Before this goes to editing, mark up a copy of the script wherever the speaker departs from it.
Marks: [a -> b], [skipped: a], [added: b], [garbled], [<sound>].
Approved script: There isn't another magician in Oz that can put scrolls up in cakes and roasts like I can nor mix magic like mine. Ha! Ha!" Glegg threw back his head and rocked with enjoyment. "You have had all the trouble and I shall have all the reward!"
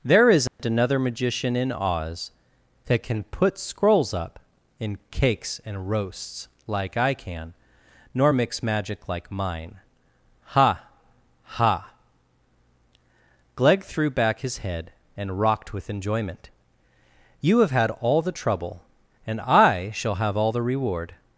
There isn't [dropout] another magician in Oz that can put scrolls up in cakes and roasts like I can nor mix magic like mine. Ha! Ha!" Glegg threw back his head and rocked with enjoyment. "You have had all the trouble and I shall have all the reward!"